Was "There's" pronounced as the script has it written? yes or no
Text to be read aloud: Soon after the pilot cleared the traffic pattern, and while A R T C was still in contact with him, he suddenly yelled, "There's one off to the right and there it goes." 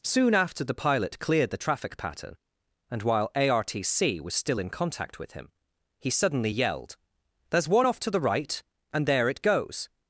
yes